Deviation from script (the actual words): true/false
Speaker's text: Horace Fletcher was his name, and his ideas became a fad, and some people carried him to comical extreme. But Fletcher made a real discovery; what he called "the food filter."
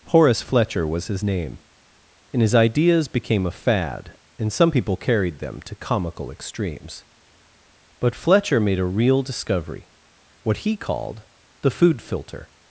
true